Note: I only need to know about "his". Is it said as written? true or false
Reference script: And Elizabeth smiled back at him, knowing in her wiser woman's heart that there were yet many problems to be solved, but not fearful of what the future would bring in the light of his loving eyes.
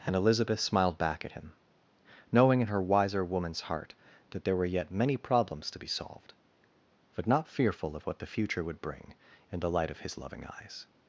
true